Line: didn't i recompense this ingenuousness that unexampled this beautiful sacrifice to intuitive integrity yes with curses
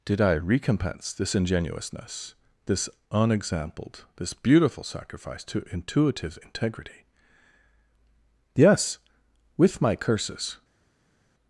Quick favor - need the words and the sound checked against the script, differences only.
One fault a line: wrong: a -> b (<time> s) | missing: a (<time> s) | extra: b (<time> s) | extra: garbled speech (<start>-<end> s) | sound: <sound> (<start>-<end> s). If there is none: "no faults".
wrong: didn't -> did (0.0 s)
wrong: that -> this (2.7 s)
extra: my (9.8 s)